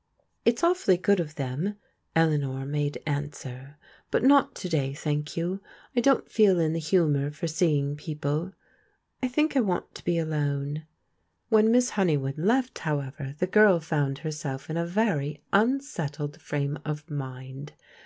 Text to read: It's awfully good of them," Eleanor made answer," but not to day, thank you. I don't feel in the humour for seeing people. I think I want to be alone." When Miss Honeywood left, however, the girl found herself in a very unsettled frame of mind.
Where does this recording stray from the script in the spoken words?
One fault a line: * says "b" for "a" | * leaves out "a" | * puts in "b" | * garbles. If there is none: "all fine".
all fine